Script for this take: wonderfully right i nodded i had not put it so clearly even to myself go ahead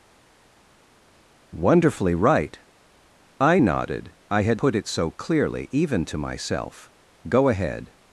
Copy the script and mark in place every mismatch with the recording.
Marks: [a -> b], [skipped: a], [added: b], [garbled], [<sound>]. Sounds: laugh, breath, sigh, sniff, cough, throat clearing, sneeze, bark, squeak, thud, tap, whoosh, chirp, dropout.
wonderfully right i nodded i had [skipped: not] put it so clearly even to myself go ahead